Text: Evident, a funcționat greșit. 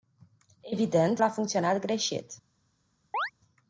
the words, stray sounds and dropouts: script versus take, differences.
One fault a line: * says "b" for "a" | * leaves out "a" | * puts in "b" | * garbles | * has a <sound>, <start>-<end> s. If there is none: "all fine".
* has a chirp, 3.1-3.3 s